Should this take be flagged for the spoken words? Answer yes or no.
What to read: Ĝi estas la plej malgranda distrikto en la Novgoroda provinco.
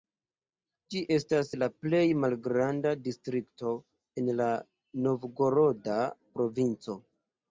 no